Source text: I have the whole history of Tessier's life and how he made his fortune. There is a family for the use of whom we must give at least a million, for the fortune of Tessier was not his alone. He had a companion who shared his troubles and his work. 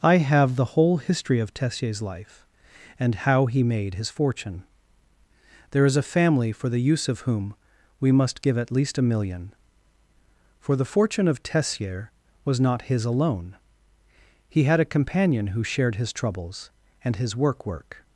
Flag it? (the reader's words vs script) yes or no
yes